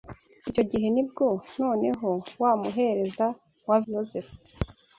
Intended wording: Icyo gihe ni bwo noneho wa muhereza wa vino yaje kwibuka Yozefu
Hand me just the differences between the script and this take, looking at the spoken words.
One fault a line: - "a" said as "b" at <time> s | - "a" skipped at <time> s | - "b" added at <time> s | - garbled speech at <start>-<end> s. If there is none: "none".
- "vino yaje kwibuka" skipped at 3.8 s